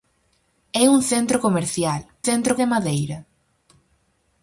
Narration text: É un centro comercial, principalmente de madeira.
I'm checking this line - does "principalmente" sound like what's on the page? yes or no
no